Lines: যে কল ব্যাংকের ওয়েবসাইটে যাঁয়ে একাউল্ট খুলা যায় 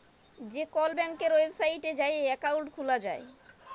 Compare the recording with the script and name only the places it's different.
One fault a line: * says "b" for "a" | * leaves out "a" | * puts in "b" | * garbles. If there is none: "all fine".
all fine